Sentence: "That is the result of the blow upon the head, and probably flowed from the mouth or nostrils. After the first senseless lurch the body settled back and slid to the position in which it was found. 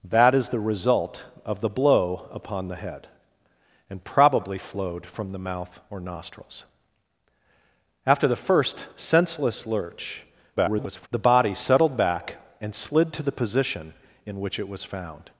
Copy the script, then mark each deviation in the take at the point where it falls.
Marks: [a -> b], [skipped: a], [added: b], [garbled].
"That is the result of the blow upon the head, and probably flowed from the mouth or nostrils. After the first senseless lurch [garbled] the body settled back and slid to the position in which it was found.